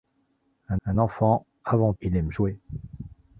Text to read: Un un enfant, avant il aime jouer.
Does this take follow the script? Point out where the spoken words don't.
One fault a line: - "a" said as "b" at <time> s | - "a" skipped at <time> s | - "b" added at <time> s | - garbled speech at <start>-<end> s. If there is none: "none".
none